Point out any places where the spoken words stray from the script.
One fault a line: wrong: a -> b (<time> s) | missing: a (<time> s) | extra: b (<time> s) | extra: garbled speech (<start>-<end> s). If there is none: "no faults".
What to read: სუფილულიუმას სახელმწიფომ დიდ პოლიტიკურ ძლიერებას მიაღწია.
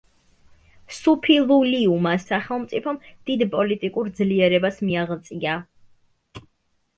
no faults